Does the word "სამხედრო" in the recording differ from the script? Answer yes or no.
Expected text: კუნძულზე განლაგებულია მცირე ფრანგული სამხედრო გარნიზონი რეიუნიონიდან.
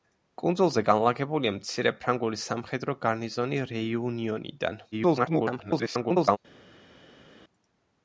no